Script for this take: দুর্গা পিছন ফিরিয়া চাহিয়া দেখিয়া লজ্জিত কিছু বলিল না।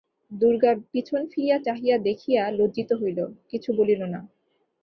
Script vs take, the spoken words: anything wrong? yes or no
yes